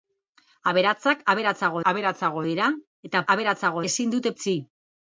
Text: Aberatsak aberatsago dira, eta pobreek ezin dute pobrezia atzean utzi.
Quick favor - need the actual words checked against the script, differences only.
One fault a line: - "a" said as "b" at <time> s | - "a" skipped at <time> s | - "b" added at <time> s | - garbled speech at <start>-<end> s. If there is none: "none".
- "aberatsago" added at 1.9 s
- "pobreek" said as "aberatsago" at 3.3 s
- "pobrezia atzean" skipped at 4.3 s